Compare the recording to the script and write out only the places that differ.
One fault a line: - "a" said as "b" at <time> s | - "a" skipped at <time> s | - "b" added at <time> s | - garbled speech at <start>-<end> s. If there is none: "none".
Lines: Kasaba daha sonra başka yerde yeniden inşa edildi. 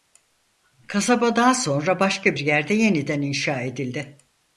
none